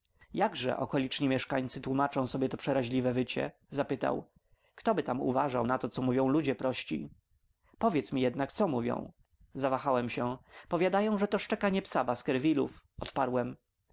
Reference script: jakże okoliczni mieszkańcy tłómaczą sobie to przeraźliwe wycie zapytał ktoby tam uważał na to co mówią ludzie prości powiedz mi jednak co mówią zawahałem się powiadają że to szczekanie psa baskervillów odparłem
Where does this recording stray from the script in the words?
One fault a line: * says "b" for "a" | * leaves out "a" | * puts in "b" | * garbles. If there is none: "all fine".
all fine